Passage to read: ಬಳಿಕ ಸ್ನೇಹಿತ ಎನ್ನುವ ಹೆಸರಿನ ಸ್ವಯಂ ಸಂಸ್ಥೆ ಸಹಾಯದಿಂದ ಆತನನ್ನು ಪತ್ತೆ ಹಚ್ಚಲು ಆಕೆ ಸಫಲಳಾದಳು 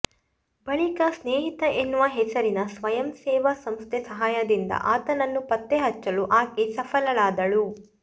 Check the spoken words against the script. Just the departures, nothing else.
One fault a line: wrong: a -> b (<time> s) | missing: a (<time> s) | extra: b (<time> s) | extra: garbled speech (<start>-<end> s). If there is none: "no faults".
extra: ಸೇವಾ (3.2 s)